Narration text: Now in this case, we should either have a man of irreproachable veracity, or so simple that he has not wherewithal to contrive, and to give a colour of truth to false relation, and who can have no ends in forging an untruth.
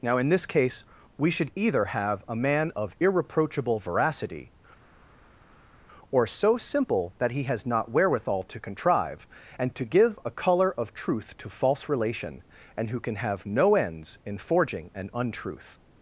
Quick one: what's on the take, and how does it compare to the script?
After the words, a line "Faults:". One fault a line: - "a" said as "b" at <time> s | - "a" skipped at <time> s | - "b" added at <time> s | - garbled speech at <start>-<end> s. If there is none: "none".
Now in this case, we should either have a man of irreproachable veracity, or so simple that he has not wherewithal to contrive, and to give a colour of truth to false relation, and who can have no ends in forging an untruth.
Faults:
none